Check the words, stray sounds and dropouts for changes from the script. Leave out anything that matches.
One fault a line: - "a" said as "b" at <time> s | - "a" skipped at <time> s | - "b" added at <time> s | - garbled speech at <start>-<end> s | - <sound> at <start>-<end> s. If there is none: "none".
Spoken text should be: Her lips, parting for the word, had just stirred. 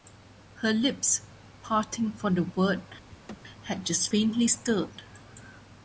- laugh at 3.1-3.4 s
- "faintly" added at 4.1 s